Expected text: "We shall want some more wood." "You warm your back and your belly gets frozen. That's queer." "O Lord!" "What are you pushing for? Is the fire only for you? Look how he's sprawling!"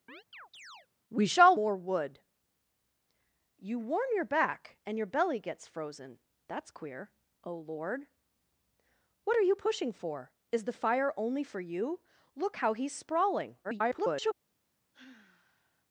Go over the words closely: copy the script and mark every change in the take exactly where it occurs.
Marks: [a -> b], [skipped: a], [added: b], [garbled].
"We shall [skipped: want some] more wood." "You warm your back and your belly gets frozen. That's queer." "O Lord!" "What are you pushing for? Is the fire only for you? Look how he's sprawling!" [garbled]